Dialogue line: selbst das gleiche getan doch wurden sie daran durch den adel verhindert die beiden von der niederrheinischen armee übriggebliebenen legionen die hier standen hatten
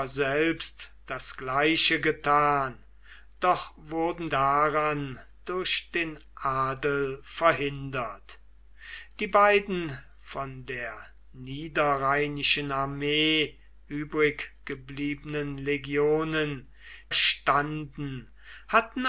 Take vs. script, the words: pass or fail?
fail